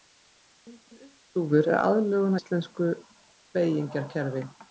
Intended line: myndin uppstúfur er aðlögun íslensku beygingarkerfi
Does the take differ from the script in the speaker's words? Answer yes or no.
no